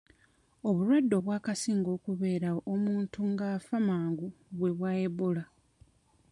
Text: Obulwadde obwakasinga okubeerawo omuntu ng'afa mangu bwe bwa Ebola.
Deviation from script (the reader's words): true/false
false